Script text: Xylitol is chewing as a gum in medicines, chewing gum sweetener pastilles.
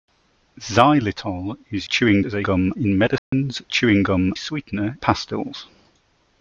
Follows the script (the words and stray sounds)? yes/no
no